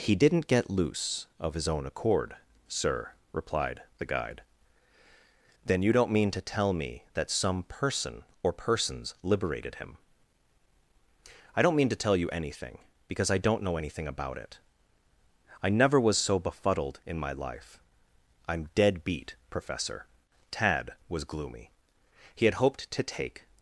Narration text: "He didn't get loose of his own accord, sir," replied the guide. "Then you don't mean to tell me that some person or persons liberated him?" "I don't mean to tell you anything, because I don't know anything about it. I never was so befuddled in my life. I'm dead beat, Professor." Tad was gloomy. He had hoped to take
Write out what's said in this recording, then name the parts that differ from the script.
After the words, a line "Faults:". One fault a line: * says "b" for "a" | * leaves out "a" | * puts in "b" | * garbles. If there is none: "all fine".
"He didn't get loose of his own accord, sir," replied the guide. "Then you don't mean to tell me that some person or persons liberated him?" "I don't mean to tell you anything, because I don't know anything about it. I never was so befuddled in my life. I'm dead beat, Professor." Tad was gloomy. He had hoped to take
Faults:
all fine